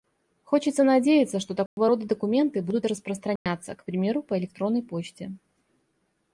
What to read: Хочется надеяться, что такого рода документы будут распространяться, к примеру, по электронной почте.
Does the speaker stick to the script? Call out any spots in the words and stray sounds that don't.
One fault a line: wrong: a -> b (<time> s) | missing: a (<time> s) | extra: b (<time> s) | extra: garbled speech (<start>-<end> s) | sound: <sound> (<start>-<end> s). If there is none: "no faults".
sound: dropout (1.7-1.8 s)
sound: dropout (3.4-3.5 s)